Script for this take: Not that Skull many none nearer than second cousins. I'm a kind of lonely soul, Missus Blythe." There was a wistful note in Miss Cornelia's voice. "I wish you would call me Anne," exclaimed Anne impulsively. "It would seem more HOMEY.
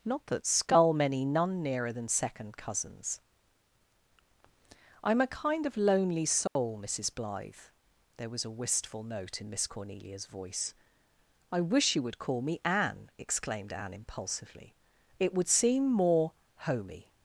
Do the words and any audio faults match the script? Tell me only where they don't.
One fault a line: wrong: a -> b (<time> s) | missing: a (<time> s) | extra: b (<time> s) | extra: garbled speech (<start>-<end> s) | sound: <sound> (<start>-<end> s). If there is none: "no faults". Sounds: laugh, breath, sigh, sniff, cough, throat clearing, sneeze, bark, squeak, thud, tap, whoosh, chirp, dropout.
sound: dropout (6.5-6.6 s)